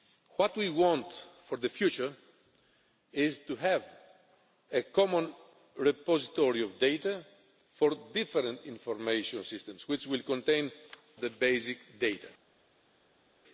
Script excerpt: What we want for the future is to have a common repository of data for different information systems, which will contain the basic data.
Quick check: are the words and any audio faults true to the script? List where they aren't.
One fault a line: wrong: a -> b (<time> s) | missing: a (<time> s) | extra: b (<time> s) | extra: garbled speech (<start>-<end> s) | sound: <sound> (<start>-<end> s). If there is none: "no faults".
no faults